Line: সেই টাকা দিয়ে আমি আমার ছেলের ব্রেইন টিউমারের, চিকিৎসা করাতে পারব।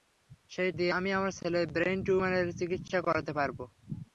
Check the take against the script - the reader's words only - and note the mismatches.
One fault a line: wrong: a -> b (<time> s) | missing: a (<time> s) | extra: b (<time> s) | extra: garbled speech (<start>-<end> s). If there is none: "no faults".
missing: টাকা (0.7 s)